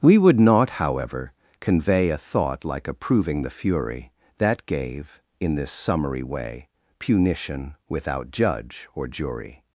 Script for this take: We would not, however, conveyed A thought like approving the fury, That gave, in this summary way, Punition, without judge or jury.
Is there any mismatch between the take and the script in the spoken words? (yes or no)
yes